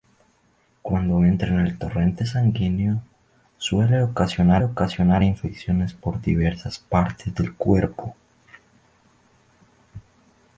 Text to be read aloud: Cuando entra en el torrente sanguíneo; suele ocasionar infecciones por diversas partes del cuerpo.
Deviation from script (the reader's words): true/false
true